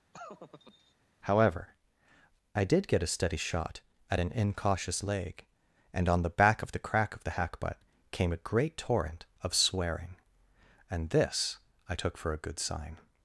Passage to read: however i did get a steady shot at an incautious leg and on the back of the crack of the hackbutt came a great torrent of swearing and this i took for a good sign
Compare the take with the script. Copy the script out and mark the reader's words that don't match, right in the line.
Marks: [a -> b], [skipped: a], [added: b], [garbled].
however i did get a steady shot at an incautious leg and on the back of the crack of the hackbutt came a great torrent of swearing and this i took for a good sign